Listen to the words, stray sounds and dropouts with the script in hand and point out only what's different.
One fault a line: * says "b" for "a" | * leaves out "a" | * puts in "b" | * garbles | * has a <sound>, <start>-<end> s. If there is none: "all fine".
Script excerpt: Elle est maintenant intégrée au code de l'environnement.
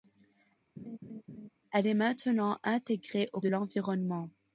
* has a laugh, 0.8-1.5 s
* leaves out "code"